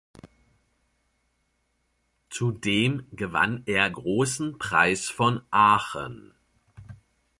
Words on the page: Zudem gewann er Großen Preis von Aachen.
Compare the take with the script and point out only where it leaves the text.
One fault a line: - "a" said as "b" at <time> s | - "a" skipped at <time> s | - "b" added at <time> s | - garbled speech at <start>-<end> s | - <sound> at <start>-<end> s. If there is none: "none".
none